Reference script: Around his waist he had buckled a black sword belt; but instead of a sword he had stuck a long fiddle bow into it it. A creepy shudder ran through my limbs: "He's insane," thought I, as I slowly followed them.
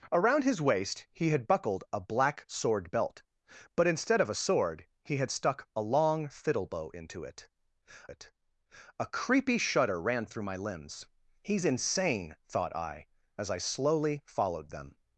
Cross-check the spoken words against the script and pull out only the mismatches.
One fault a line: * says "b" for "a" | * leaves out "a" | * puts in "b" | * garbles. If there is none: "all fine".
all fine